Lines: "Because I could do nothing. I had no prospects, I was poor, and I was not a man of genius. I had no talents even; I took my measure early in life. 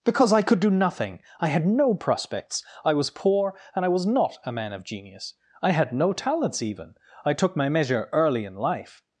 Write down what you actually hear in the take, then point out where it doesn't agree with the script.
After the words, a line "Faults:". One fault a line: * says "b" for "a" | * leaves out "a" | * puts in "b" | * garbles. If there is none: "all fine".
"Because I could do nothing. I had no prospects, I was poor, and I was not a man of genius. I had no talents even; I took my measure early in life.
Faults:
all fine